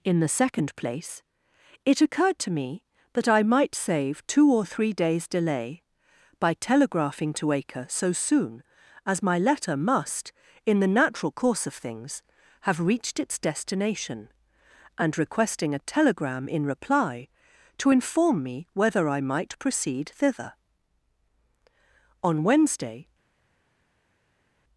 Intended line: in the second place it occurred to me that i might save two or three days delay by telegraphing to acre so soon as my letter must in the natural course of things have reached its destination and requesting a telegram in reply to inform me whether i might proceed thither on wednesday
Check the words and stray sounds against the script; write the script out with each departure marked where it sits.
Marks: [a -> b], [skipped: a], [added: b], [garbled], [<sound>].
in the second place it occurred to me that i might save two or three days delay by telegraphing to acre so soon as my letter must in the natural course of things have reached its destination and requesting a telegram in reply to inform me whether i might proceed thither on wednesday